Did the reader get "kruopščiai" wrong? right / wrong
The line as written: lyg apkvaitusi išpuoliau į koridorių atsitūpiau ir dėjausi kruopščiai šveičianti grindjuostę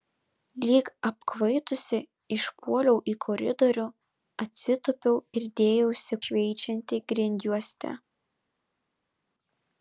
wrong